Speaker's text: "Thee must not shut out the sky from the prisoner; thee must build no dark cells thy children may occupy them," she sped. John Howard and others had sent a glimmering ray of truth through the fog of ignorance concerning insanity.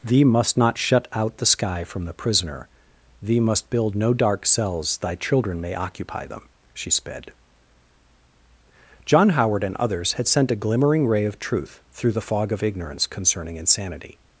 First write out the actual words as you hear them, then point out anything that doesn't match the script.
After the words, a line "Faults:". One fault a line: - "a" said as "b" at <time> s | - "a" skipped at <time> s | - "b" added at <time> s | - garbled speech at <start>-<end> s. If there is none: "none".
"Thee must not shut out the sky from the prisoner; thee must build no dark cells thy children may occupy them," she sped. John Howard and others had sent a glimmering ray of truth through the fog of ignorance concerning insanity.
Faults:
none